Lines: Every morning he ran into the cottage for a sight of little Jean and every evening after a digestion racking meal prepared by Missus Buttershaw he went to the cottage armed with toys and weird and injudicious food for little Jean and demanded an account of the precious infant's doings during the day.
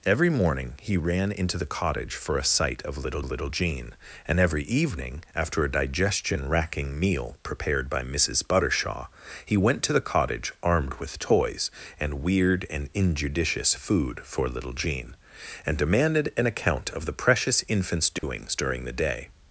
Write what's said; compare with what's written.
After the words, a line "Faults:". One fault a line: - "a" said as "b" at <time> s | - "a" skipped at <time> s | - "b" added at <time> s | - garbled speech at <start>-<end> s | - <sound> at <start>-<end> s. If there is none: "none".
Every morning he ran into the cottage for a sight of little little Jean and every evening after a digestion racking meal prepared by Missus Buttershaw he went to the cottage armed with toys and weird and injudicious food for little Jean and demanded an account of the precious infant's doings during the day.
Faults:
- "little" added at 3.2 s
- dropout at 18.2-18.2 s